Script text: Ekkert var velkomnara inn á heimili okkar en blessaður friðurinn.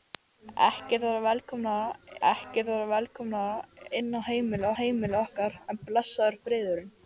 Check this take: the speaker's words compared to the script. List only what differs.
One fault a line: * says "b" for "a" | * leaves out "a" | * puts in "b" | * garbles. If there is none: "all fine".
* puts in "ekkert var velkomnara"
* puts in "heimili"